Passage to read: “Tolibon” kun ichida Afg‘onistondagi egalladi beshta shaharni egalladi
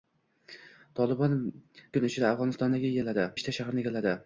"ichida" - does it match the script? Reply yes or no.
yes